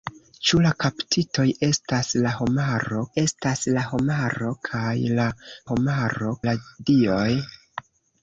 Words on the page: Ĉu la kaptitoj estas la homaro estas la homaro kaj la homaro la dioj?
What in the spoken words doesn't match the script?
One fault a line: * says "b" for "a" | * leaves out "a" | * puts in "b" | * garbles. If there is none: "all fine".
all fine